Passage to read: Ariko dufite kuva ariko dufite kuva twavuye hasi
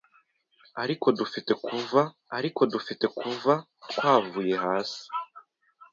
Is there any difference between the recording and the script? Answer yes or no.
no